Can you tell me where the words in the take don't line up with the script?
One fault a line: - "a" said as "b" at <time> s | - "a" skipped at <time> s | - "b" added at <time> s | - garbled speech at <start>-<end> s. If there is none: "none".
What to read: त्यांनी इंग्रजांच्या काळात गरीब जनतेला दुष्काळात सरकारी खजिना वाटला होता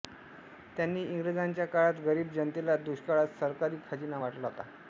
none